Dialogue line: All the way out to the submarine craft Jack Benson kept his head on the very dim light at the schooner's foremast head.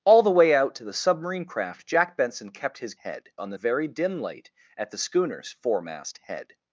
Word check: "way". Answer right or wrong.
right